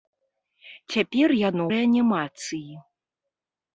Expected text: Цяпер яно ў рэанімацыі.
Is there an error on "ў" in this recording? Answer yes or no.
yes